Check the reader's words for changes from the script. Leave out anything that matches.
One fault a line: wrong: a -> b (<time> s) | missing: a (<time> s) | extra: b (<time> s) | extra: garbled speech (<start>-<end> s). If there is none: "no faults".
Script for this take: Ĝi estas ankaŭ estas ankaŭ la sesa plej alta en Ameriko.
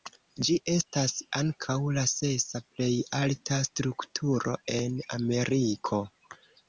missing: estas ankaŭ (1.8 s)
extra: strukturo (3.7 s)